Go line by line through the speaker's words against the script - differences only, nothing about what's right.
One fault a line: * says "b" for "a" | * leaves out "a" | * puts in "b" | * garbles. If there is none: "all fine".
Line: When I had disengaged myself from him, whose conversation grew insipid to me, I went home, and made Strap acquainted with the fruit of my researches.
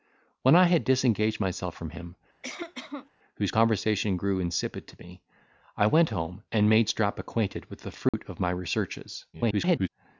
* garbles